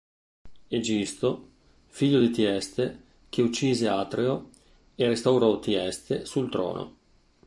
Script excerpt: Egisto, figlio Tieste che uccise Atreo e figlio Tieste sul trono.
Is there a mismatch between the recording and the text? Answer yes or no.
yes